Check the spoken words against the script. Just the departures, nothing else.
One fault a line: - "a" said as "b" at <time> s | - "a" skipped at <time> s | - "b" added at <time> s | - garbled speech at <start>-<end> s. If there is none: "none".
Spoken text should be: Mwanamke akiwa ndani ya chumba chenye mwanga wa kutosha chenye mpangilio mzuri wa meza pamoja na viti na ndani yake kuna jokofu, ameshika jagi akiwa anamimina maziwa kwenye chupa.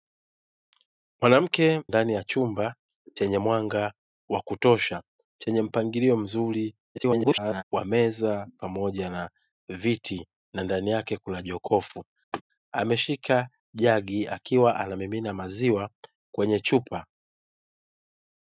- "akiwa" skipped at 1.8 s
- garbled speech at 6.9-7.6 s